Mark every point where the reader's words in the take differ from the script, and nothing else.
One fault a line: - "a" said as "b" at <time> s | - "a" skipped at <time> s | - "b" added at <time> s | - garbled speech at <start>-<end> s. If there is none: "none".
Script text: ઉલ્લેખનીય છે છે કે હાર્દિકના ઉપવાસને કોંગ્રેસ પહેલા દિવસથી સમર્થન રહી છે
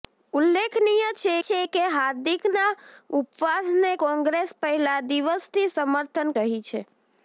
none